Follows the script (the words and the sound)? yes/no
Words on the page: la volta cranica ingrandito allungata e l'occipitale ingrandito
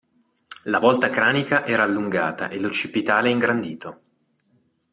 no